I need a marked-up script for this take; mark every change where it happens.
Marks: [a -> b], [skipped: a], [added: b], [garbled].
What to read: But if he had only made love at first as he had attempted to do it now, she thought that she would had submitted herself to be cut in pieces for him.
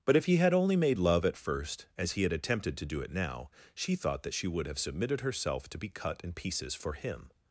But if he had only made love at first as he had attempted to do it now, she thought that she would [had -> have] submitted herself to be cut in pieces for him.